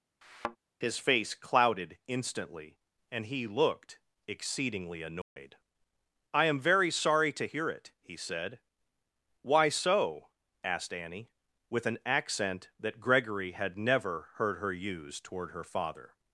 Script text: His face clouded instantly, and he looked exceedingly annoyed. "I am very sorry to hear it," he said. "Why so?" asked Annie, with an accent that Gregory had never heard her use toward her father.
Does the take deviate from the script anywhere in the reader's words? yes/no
no